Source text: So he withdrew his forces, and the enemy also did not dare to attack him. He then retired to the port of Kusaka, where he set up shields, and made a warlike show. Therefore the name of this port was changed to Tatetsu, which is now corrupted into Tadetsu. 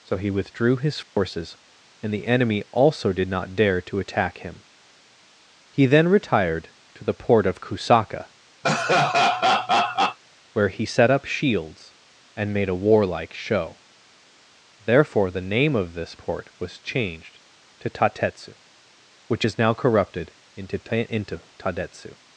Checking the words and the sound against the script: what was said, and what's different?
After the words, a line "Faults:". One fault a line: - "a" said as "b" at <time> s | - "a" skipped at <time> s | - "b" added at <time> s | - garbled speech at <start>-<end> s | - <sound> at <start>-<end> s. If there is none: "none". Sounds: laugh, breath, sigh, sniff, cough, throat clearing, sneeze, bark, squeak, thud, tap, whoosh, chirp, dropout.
So he withdrew his forces, and the enemy also did not dare to attack him. He then retired to the port of Kusaka, where he set up shields, and made a warlike show. Therefore the name of this port was changed to Tatetsu, which is now corrupted into into Tadetsu.
Faults:
- dropout at 1.0-1.2 s
- laugh at 8.6-10.2 s
- "into" added at 21.1 s